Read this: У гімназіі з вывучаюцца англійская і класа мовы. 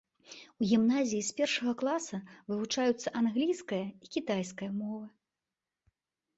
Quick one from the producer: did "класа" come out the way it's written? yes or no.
no